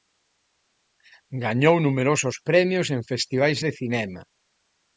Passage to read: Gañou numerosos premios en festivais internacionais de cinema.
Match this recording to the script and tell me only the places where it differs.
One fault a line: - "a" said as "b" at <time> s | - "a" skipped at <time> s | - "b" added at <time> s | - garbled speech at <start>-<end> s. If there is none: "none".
- "internacionais" skipped at 3.6 s